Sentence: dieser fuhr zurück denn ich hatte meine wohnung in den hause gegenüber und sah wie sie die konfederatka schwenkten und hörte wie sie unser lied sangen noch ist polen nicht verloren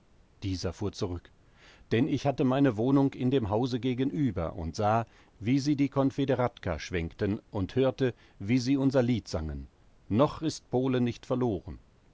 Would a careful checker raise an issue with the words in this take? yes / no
yes